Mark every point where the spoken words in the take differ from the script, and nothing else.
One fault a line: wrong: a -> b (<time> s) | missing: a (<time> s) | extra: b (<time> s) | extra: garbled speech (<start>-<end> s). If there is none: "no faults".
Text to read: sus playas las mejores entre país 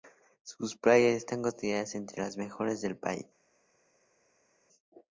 extra: están consideradas entre (1.1 s)
wrong: entre -> del (2.8 s)